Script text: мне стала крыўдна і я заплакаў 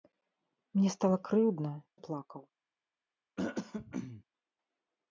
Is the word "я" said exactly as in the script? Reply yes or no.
no